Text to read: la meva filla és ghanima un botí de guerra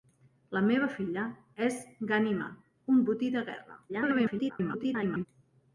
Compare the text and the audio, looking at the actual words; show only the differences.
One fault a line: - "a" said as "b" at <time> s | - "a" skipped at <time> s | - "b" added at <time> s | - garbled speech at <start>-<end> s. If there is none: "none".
- garbled speech at 3.9-5.3 s